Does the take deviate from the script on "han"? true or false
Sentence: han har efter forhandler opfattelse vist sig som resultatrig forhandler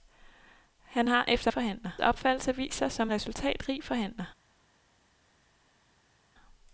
false